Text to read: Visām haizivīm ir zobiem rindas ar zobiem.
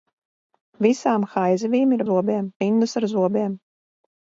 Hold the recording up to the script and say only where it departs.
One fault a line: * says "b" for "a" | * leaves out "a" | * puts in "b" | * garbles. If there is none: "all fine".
all fine